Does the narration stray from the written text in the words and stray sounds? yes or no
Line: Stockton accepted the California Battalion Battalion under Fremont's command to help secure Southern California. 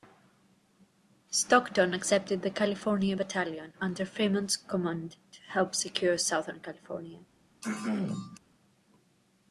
yes